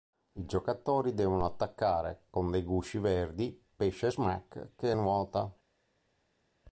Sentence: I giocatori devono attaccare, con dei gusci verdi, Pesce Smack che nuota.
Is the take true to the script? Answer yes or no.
yes